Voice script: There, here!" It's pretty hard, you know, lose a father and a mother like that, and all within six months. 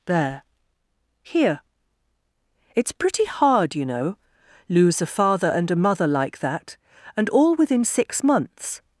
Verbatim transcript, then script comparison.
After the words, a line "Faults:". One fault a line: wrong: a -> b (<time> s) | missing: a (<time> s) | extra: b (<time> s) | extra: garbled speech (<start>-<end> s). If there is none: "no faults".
There, here!" It's pretty hard, you know, lose a father and a mother like that, and all within six months.
Faults:
no faults